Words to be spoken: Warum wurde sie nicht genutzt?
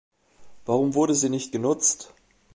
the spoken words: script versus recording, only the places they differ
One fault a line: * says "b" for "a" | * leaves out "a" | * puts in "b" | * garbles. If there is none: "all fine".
all fine